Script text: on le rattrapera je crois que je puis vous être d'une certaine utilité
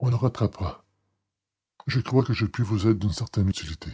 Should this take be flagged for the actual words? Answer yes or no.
no